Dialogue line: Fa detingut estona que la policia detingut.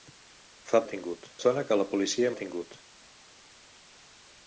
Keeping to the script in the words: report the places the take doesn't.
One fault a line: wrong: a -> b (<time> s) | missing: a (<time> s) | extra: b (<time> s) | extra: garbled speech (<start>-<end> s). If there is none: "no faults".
no faults